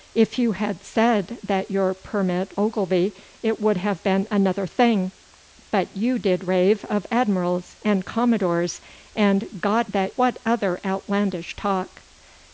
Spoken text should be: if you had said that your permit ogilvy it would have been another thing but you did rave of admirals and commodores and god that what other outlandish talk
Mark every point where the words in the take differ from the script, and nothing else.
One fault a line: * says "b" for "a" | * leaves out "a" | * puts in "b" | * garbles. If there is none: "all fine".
all fine